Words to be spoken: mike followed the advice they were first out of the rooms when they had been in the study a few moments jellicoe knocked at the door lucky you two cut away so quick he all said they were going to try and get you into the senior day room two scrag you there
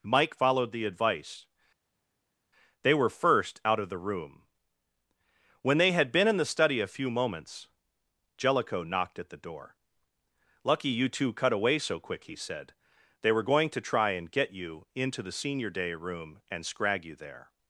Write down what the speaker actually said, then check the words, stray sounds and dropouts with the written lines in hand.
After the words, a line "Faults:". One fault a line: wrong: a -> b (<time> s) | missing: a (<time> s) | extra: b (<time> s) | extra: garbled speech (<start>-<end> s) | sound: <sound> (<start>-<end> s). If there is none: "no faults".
mike followed the advice they were first out of the room when they had been in the study a few moments jellicoe knocked at the door lucky you two cut away so quick he said they were going to try and get you into the senior day room and scrag you there
Faults:
wrong: rooms -> room (4.0 s)
missing: all (12.3 s)
wrong: two -> and (16.5 s)